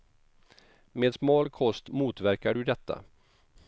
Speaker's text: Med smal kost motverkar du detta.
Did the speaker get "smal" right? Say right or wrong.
right